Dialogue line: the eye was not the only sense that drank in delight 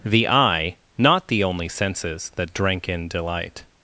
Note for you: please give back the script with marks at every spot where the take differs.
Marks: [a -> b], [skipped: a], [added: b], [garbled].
the eye [skipped: was] not the only [sense -> senses] that drank in delight